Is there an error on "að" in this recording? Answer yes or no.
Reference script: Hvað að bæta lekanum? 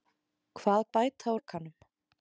no